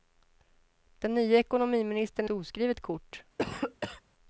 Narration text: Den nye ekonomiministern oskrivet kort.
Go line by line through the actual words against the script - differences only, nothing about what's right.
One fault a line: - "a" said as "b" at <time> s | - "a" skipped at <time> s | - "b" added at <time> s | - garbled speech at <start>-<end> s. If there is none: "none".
none